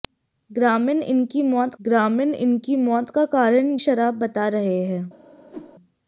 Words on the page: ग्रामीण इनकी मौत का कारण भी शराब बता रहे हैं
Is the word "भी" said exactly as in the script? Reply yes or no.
no